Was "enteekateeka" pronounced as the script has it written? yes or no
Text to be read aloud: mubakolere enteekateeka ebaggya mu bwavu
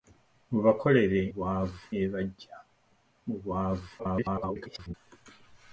no